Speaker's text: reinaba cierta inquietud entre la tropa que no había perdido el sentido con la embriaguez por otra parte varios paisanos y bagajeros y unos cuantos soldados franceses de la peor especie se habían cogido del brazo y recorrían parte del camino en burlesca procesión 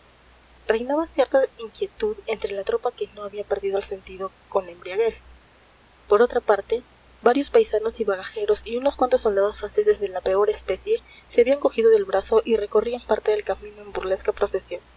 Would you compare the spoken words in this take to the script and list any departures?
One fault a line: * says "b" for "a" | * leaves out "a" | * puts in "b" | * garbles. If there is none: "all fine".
all fine